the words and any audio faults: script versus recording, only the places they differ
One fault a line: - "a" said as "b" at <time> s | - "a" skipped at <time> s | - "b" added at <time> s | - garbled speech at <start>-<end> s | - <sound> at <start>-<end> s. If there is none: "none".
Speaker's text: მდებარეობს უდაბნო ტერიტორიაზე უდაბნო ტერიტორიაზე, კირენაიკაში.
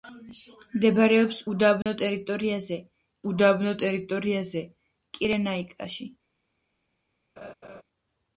- dropout at 1.8-1.9 s
- laugh at 7.4-7.8 s